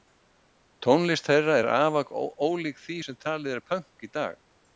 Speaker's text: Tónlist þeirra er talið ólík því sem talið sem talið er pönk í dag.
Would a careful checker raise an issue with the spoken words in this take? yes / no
yes